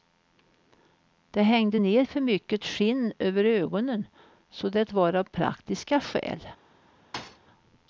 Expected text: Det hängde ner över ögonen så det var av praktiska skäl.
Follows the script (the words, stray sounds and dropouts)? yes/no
no